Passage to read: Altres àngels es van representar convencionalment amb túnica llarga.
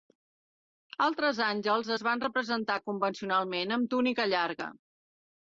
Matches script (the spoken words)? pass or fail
pass